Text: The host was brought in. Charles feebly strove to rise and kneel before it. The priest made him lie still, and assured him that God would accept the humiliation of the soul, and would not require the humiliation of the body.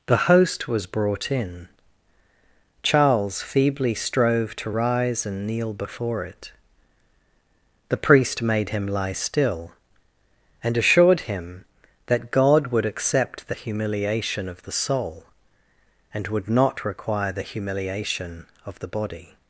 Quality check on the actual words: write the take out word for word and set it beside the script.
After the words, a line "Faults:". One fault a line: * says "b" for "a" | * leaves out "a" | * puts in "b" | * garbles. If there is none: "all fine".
The host was brought in. Charles feebly strove to rise and kneel before it. The priest made him lie still, and assured him that God would accept the humiliation of the soul, and would not require the humiliation of the body.
Faults:
all fine